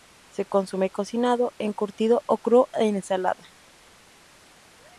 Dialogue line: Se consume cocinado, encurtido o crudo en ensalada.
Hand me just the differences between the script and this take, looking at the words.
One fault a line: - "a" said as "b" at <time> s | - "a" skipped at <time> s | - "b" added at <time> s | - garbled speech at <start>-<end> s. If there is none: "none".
none